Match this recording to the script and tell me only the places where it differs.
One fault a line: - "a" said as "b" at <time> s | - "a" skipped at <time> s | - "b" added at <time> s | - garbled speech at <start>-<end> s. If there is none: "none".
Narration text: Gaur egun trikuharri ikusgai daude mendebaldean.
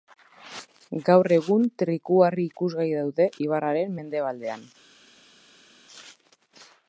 - "ibarraren" added at 3.5 s